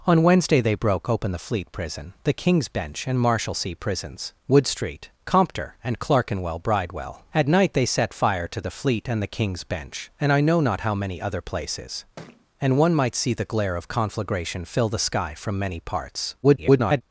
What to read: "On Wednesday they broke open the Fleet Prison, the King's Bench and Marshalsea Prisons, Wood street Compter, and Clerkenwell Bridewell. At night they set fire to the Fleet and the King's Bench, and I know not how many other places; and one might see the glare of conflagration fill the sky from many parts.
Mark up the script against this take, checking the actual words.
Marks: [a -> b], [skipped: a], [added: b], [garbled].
"On Wednesday they broke open the Fleet Prison, the King's Bench and Marshalsea Prisons, Wood street Compter, and Clerkenwell Bridewell. At night they set fire to the Fleet and the King's Bench, and I know not how many other places; and one might see the glare of conflagration fill the sky from many parts. [garbled]